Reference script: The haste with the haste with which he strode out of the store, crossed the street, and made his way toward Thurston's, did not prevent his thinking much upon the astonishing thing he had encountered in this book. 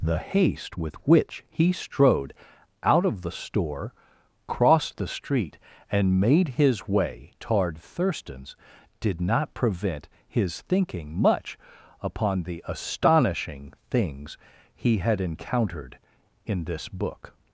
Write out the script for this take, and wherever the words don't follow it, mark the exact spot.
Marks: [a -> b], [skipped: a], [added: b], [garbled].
The haste with [skipped: the haste with] which he strode out of the store, crossed the street, and made his way toward Thurston's, did not prevent his thinking much upon the astonishing [thing -> things] he had encountered in this book.